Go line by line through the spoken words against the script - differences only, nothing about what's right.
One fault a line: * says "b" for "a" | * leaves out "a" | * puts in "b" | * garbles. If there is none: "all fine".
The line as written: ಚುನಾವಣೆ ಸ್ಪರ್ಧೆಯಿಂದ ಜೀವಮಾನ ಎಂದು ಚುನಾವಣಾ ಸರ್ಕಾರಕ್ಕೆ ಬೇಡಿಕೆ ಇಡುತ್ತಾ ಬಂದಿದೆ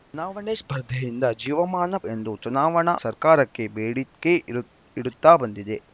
all fine